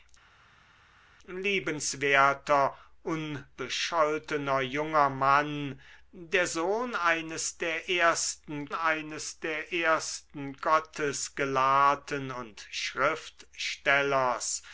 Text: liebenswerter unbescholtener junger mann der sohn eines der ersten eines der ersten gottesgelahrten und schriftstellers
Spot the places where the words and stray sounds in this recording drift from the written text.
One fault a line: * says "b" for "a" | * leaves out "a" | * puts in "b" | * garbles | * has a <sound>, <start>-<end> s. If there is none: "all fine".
all fine